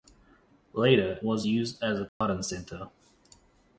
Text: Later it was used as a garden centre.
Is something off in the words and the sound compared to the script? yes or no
yes